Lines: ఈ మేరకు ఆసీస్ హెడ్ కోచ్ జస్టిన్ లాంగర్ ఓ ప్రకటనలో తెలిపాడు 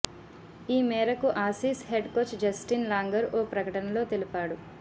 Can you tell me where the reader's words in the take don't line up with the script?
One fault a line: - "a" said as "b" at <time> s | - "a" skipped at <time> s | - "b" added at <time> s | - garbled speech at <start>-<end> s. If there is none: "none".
none